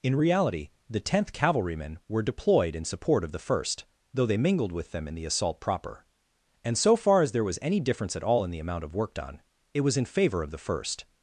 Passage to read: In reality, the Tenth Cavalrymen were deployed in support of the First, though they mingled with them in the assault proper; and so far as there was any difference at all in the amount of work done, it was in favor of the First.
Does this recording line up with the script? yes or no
yes